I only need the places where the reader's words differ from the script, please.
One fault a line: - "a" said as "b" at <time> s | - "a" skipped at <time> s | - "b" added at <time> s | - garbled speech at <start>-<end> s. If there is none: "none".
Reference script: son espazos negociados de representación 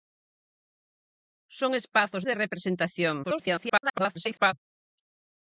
- "negociados" skipped at 2.2 s
- garbled speech at 3.2-4.5 s